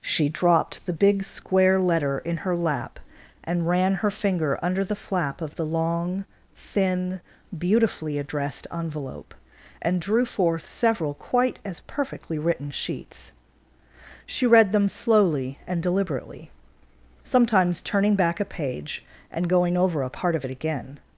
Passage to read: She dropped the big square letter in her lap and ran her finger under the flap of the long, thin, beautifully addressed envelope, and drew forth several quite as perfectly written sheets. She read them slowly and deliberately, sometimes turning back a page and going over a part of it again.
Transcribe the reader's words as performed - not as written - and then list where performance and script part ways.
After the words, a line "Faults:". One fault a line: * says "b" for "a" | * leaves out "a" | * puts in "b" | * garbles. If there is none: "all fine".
She dropped the big square letter in her lap and ran her finger under the flap of the long, thin, beautifully addressed envelope, and drew forth several quite as perfectly written sheets. She read them slowly and deliberately, sometimes turning back a page and going over a part of it again.
Faults:
all fine